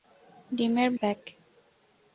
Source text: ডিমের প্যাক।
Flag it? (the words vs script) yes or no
no